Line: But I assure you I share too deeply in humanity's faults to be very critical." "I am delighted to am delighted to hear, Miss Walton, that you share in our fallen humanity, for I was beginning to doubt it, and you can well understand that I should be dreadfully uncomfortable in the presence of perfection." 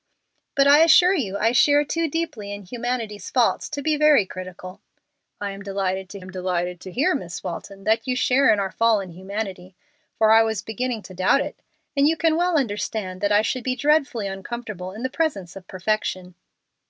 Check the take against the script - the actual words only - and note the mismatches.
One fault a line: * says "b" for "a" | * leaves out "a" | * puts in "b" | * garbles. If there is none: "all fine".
all fine